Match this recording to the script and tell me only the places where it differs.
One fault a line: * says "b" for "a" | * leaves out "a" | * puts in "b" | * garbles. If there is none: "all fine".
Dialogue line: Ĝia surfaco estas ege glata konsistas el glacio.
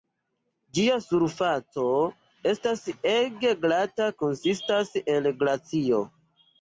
all fine